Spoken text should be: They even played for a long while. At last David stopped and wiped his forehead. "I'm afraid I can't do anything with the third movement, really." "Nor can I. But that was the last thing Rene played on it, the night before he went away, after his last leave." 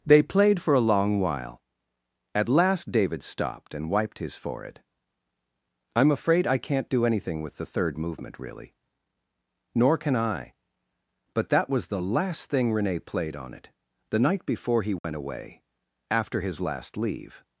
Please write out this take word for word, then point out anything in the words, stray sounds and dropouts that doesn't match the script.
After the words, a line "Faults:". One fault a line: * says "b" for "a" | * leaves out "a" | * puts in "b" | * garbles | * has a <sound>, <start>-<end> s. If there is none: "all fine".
They played for a long while. At last David stopped and wiped his forehead. "I'm afraid I can't do anything with the third movement, really." "Nor can I. But that was the last thing Rene played on it, the night before he went away, after his last leave."
Faults:
* leaves out "even"
* has a dropout, 15.0-15.0 s